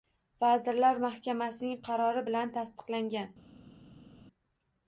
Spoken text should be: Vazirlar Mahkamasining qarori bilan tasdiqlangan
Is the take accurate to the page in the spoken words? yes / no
yes